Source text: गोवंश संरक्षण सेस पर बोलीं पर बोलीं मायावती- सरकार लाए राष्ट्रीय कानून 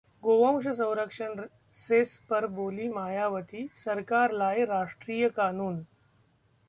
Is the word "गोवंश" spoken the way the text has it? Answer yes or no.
yes